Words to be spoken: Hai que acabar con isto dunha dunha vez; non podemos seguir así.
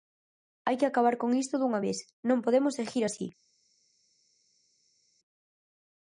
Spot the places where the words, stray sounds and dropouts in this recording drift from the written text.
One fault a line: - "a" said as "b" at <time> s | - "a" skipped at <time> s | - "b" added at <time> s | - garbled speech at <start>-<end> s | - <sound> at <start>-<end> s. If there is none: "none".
- "dunha" skipped at 1.8 s